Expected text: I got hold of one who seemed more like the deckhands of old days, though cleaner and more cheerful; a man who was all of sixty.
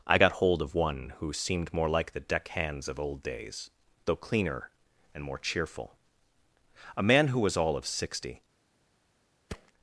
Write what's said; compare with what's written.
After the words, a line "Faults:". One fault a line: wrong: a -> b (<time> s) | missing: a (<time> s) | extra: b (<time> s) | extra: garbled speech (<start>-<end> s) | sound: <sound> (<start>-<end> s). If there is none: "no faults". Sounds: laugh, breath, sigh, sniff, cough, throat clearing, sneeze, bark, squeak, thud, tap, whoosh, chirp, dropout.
I got hold of one who seemed more like the deckhands of old days, though cleaner and more cheerful; a man who was all of sixty.
Faults:
sound: thud (9.5-9.7 s)